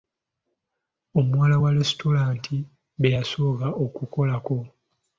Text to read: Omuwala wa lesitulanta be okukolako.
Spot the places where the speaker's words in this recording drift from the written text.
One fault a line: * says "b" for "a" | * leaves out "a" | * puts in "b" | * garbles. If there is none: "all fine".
* puts in "yasooka"